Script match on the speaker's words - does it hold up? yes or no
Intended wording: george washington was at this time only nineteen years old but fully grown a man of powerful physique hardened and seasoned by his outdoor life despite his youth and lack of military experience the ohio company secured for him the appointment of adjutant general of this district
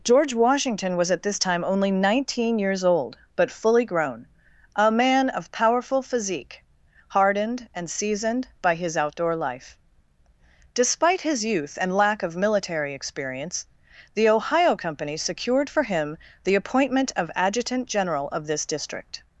yes